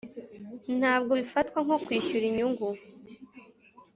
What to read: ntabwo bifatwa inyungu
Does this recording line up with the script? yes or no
no